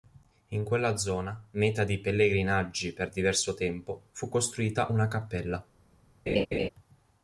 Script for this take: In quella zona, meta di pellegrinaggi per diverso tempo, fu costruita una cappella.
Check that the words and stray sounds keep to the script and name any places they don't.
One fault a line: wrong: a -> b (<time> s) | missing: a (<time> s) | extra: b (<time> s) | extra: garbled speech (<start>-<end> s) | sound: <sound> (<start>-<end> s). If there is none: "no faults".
sound: laugh (6.3-6.7 s)